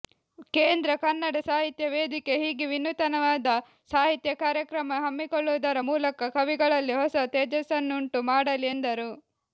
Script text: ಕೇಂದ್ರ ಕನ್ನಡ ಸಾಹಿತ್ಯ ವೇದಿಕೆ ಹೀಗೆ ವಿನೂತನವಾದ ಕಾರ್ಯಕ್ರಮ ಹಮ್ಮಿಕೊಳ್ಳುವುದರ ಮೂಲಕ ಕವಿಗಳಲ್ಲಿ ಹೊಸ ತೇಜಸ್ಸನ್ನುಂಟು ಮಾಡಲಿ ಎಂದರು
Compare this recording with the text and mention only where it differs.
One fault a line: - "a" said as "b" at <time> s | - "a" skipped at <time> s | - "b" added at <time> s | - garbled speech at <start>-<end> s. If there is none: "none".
- "ಸಾಹಿತ್ಯ" added at 3.9 s